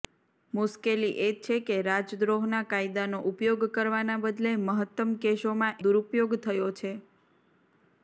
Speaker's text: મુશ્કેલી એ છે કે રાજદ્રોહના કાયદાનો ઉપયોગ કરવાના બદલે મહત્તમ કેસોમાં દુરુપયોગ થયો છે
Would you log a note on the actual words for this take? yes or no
no